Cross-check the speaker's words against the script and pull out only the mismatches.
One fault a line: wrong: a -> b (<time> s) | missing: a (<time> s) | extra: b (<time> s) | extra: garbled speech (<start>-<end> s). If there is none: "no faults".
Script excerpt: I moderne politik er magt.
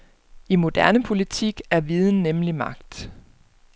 extra: viden nemlig (1.8 s)